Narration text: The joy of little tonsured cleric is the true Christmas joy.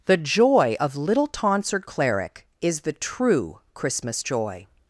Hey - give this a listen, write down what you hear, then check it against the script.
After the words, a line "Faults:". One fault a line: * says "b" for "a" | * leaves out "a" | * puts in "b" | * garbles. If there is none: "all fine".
The joy of little tonsured cleric is the true Christmas joy.
Faults:
all fine